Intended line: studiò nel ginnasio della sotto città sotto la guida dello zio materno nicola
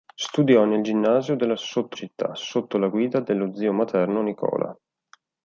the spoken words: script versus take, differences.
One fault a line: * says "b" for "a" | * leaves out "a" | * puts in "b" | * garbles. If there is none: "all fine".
all fine